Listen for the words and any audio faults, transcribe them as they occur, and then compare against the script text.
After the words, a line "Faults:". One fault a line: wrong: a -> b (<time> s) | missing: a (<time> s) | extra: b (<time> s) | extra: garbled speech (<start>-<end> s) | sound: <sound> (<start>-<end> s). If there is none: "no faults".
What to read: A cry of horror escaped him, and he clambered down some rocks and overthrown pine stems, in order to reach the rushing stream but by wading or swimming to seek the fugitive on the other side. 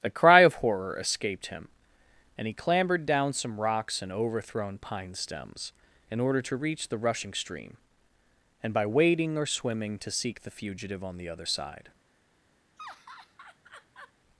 A cry of horror escaped him, and he clambered down some rocks and overthrown pine stems, in order to reach the rushing stream and by wading or swimming to seek the fugitive on the other side.
Faults:
wrong: but -> and (8.6 s)
sound: laugh (12.8-14.1 s)